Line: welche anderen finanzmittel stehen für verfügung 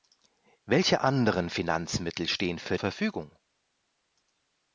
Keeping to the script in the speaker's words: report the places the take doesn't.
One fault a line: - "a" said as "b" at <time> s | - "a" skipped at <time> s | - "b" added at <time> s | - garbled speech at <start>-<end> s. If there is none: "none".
none